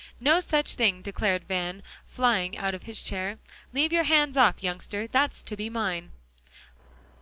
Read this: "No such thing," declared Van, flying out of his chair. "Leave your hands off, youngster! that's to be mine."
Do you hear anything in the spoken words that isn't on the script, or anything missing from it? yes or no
no